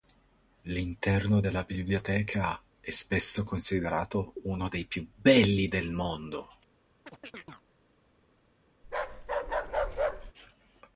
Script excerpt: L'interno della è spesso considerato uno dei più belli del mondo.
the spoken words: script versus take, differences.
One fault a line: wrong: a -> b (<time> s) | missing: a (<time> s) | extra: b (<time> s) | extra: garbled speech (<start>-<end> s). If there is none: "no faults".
extra: biblioteca (1.6 s)